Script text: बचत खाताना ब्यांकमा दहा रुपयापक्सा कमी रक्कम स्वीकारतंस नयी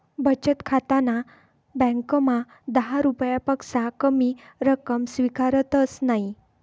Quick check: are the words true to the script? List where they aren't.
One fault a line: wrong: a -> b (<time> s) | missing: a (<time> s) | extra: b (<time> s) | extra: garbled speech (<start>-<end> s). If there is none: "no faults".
no faults